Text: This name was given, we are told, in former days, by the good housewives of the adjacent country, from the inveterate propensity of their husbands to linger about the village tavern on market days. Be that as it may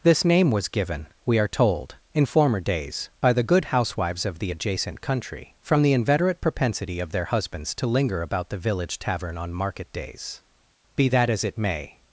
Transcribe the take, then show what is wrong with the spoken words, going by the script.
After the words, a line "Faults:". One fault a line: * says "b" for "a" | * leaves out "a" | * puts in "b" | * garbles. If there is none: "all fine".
This name was given, we are told, in former days, by the good housewives of the adjacent country, from the inveterate propensity of their husbands to linger about the village tavern on market days. Be that as it may
Faults:
all fine